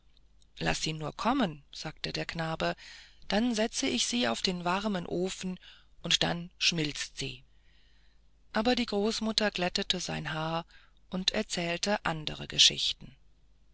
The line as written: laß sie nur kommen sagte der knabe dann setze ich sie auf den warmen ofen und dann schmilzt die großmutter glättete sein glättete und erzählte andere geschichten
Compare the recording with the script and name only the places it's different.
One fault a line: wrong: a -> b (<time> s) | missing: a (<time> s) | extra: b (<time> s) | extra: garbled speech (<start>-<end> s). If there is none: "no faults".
extra: sie aber (7.2 s)
wrong: glättete -> haar (10.3 s)